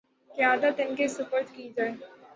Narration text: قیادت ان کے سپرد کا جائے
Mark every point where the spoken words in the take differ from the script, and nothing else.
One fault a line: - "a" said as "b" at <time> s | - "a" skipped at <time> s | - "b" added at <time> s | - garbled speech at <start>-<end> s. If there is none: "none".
- "کا" said as "کی" at 1.5 s